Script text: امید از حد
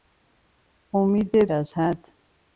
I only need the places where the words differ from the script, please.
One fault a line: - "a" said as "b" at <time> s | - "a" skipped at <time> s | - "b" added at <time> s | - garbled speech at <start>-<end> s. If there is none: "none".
none